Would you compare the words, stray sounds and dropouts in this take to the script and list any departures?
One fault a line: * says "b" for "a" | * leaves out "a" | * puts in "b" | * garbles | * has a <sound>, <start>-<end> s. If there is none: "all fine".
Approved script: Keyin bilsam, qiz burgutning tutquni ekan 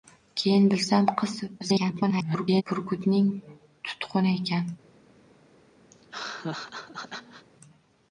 * garbles
* has a laugh, 5.9-7.5 s